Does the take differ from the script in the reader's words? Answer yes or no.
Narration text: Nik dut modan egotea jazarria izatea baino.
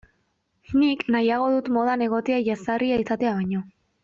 yes